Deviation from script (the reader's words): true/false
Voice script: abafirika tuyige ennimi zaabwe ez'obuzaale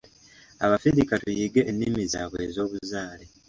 false